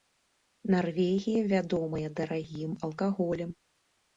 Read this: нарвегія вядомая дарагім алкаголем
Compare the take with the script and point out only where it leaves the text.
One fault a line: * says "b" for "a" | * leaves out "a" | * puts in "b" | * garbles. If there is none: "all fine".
all fine